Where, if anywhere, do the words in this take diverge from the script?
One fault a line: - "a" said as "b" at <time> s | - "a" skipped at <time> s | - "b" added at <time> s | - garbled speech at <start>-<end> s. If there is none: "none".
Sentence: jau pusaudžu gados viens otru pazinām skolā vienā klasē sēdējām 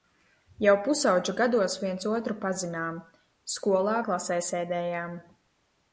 - "vienā" skipped at 4.0 s